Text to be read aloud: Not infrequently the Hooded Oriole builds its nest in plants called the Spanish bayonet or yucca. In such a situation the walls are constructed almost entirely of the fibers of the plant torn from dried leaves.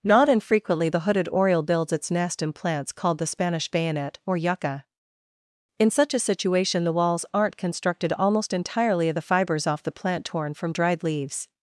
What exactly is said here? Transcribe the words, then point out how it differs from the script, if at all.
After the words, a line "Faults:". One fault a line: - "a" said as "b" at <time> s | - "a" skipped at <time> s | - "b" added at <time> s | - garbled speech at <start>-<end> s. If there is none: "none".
Not infrequently the Hooded Oriole builds its nest in plants called the Spanish bayonet or yucca. In such a situation the walls aren't constructed almost entirely of the fibers off the plant torn from dried leaves.
Faults:
- "are" said as "aren't" at 7.3 s
- "of" said as "off" at 9.7 s